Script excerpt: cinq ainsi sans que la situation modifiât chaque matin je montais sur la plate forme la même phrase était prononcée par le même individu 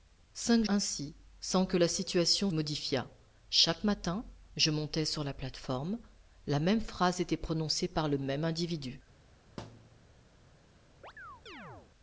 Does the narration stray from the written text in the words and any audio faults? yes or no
yes